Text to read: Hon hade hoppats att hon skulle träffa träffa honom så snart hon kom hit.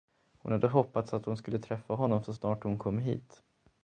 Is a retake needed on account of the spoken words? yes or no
yes